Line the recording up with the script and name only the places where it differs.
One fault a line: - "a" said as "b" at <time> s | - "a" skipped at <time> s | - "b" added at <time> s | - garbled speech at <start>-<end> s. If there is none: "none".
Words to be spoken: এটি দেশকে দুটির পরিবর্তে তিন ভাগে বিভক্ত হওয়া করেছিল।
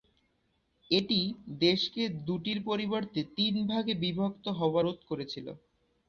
- "রোধ" added at 4.8 s